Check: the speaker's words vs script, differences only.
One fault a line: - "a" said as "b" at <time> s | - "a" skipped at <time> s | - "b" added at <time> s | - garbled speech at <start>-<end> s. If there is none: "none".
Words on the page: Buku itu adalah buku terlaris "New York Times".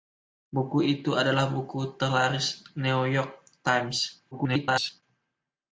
- garbled speech at 4.3-5.0 s